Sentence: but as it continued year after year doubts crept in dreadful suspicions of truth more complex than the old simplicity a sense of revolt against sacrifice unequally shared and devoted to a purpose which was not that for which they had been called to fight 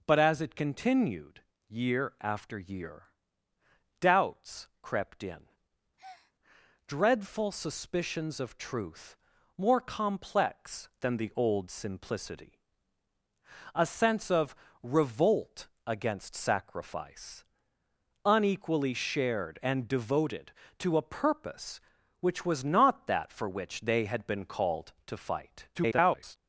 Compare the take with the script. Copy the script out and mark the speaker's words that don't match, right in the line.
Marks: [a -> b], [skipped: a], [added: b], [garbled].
but as it continued year after year doubts crept in dreadful suspicions of truth more complex than the old simplicity a sense of revolt against sacrifice unequally shared and devoted to a purpose which was not that for which they had been called to fight [garbled]